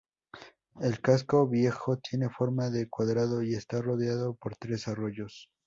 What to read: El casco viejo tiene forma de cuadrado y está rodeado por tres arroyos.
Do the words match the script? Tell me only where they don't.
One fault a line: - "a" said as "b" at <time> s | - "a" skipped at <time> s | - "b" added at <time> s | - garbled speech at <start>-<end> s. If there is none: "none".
none